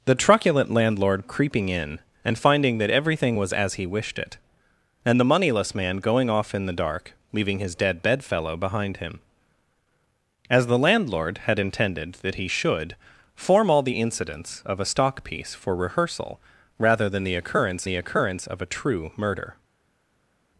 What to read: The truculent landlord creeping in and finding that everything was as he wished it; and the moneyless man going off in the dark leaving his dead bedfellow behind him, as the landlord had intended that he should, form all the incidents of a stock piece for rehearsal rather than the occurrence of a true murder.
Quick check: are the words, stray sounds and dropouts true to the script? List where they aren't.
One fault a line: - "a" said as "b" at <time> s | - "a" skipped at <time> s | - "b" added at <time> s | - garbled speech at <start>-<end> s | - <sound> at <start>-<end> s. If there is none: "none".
- "the occurrence" added at 17.8 s